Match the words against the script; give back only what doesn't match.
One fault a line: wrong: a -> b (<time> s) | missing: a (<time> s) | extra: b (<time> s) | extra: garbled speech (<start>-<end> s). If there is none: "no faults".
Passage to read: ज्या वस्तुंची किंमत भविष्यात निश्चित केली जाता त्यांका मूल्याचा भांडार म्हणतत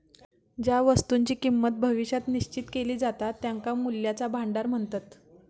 no faults